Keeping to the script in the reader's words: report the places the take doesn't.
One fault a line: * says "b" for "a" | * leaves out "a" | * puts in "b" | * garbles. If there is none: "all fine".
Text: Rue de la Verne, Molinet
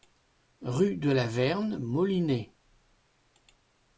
all fine